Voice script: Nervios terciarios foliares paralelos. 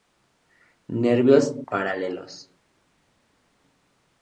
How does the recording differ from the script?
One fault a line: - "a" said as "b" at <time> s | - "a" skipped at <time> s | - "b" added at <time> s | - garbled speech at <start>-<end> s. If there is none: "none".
- "terciarios foliares" skipped at 1.6 s